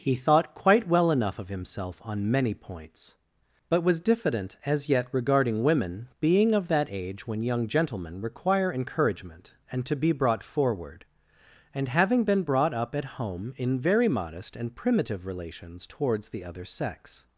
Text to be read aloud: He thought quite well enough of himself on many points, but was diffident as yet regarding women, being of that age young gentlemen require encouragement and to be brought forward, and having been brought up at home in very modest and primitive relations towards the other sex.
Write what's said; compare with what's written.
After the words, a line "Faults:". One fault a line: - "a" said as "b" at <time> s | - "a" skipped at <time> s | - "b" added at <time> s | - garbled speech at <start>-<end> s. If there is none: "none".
He thought quite well enough of himself on many points, but was diffident as yet regarding women, being of that age when young gentlemen require encouragement and to be brought forward, and having been brought up at home in very modest and primitive relations towards the other sex.
Faults:
- "when" added at 7.3 s